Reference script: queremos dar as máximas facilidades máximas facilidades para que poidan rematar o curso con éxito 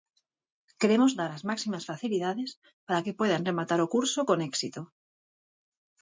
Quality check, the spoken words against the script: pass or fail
fail